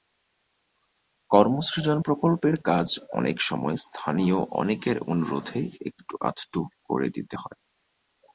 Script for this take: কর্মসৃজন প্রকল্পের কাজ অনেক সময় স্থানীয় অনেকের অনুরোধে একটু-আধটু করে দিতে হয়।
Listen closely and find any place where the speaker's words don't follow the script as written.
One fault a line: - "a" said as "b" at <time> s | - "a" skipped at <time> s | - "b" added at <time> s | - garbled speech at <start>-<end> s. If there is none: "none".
none